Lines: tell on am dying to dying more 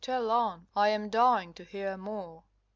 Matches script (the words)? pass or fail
fail